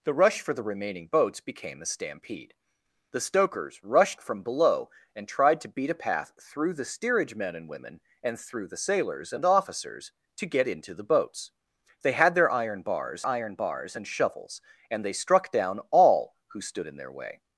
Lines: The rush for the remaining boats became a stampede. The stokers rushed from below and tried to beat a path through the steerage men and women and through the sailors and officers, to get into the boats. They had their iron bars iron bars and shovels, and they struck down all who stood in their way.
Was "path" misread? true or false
false